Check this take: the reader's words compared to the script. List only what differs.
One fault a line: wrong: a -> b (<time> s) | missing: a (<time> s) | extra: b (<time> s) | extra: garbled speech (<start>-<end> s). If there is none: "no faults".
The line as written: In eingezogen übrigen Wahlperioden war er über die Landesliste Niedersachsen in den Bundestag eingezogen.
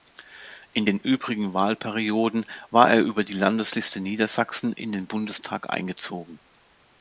wrong: eingezogen -> den (0.8 s)